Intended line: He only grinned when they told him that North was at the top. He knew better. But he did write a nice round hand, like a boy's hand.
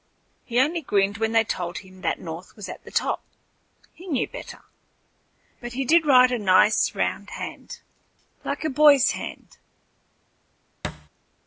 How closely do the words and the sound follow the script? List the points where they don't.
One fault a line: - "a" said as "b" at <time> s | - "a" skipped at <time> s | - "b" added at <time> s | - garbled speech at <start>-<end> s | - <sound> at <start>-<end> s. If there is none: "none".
- thud at 10.8-11.1 s